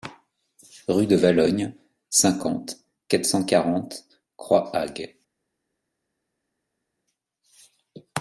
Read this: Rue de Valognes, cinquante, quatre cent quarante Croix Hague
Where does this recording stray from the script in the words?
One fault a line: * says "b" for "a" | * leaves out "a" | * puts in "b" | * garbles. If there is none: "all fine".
all fine